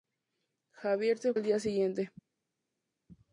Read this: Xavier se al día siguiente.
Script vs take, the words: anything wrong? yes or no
no